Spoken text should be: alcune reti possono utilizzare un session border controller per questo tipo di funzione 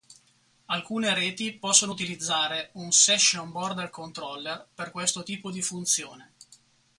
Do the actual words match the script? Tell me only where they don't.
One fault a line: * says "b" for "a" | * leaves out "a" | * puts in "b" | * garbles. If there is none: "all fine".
all fine